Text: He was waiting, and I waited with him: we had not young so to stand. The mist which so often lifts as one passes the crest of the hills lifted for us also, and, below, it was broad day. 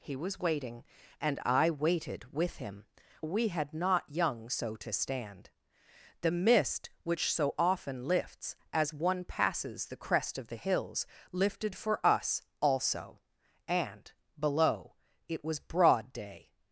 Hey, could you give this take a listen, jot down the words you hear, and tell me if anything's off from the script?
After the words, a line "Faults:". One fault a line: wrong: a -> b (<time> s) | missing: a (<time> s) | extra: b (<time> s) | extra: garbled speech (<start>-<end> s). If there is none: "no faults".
He was waiting, and I waited with him: we had not young so to stand. The mist which so often lifts as one passes the crest of the hills lifted for us also, and, below, it was broad day.
Faults:
no faults